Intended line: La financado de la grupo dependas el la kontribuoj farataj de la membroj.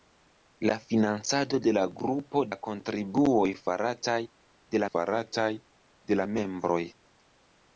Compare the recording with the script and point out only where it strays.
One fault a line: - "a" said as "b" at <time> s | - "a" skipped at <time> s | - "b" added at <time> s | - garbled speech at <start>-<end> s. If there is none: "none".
- "dependas el la kontribuoj" said as "la kontribuoj farataj de" at 2.5 s